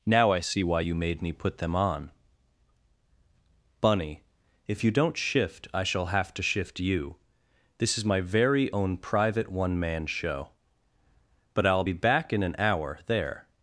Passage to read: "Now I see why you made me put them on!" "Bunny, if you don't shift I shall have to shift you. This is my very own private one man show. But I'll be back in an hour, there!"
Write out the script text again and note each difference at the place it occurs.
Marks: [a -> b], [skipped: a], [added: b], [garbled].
"Now I see why you made me put them on!" "Bunny, if you don't shift I shall have to shift you. This is my very own private one man show. But I'll be back in an hour, there!"